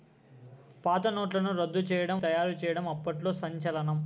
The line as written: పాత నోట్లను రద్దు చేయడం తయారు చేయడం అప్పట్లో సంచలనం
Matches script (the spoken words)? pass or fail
pass